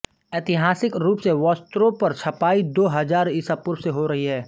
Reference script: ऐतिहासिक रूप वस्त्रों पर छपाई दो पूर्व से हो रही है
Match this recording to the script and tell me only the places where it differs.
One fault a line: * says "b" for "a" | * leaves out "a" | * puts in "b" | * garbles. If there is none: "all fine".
* puts in "से"
* puts in "हजार ईसा"